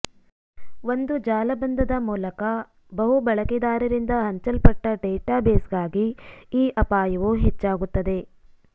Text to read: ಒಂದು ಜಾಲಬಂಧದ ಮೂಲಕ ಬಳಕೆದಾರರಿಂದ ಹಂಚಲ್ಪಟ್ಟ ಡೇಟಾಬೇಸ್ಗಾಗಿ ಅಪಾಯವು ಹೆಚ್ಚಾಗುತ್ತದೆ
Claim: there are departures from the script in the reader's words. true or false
true